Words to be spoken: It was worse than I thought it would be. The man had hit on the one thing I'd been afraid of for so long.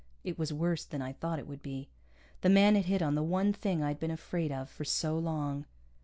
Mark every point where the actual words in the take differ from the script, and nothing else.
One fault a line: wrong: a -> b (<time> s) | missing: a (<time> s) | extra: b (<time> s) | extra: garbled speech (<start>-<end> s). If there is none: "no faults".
no faults